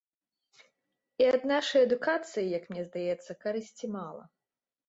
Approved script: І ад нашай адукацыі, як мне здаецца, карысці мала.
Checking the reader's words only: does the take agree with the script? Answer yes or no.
yes